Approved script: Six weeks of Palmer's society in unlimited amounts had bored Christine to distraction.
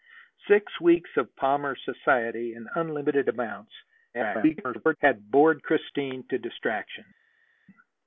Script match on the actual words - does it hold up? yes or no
no